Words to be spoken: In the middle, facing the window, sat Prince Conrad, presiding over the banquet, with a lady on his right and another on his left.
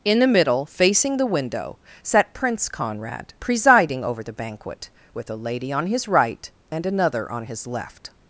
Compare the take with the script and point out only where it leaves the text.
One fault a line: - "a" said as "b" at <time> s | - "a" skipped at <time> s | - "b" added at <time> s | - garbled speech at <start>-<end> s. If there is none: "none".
none